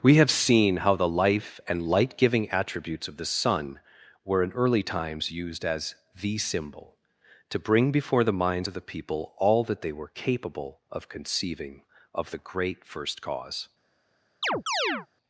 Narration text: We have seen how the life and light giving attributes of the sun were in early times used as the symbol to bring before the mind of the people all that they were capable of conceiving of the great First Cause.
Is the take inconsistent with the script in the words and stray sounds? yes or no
yes